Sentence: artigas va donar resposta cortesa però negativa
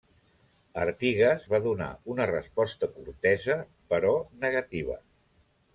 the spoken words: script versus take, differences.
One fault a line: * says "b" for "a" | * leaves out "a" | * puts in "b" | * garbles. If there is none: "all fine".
* puts in "una"